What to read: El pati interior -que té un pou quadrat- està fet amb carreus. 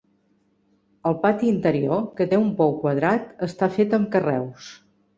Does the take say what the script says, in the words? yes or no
yes